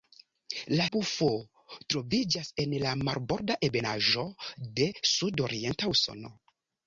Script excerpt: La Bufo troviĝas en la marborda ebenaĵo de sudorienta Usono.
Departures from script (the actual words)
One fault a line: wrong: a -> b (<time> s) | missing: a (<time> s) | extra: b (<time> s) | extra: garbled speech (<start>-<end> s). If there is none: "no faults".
no faults